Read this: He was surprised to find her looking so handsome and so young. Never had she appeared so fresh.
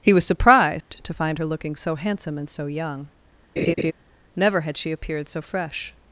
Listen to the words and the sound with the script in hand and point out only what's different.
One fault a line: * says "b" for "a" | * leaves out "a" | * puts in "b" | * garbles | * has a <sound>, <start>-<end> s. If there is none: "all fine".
* has a dropout, 0.8-0.9 s
* has a laugh, 3.6-3.9 s